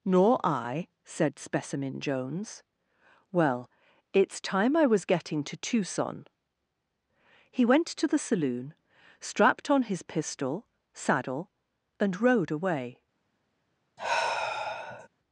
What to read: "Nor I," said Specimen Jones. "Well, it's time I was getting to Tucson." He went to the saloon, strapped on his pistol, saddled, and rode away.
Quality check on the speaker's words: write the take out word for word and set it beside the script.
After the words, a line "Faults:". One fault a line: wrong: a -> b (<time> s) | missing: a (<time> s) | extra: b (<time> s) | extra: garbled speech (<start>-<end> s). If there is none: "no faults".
"Nor I," said Specimen Jones. "Well, it's time I was getting to Tucson." He went to the saloon, strapped on his pistol, saddle, and rode away.
Faults:
wrong: saddled -> saddle (10.9 s)